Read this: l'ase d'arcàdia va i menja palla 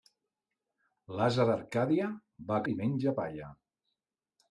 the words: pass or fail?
pass